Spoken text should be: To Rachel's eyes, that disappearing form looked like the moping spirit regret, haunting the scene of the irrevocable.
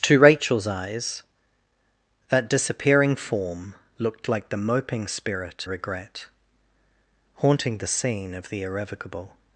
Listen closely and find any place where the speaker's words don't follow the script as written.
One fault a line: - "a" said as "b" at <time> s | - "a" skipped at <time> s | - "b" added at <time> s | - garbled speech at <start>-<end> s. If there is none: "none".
none